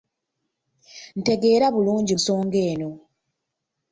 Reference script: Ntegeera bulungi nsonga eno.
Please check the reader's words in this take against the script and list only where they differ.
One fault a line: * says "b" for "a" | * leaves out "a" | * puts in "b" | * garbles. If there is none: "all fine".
all fine